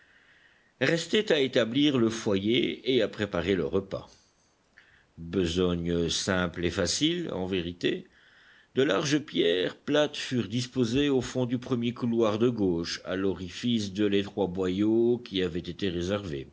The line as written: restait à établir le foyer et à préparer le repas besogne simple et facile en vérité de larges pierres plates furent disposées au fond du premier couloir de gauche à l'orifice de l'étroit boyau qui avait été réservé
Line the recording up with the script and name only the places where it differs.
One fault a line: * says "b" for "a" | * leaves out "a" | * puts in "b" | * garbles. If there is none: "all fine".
all fine